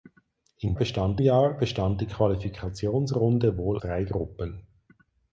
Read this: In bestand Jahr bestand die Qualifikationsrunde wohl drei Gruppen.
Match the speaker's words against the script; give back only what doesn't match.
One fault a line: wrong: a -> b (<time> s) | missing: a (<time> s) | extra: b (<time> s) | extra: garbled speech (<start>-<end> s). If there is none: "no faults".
no faults